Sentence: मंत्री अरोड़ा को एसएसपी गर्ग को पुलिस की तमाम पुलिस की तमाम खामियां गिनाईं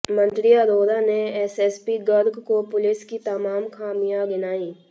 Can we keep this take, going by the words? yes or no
no